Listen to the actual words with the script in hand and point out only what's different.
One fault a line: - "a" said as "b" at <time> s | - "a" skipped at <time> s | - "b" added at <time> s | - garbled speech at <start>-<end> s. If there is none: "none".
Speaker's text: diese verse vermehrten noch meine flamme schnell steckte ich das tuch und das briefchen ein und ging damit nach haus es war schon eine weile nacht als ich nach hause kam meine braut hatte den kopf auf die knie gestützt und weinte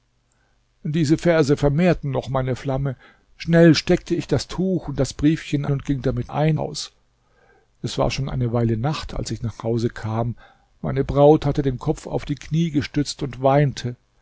- "ein" skipped at 5.7 s
- "nach" said as "ein" at 6.3 s